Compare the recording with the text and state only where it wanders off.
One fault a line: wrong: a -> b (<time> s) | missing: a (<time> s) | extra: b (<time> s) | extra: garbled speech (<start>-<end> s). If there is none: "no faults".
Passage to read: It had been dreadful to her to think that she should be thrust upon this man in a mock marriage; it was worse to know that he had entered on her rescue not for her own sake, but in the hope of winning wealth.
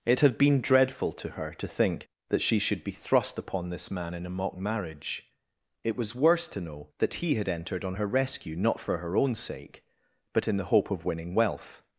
no faults